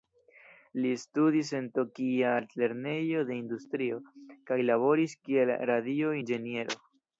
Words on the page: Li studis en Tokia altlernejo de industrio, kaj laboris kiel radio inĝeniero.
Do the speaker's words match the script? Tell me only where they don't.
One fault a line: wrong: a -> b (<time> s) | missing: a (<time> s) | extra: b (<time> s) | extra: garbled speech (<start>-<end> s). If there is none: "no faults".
no faults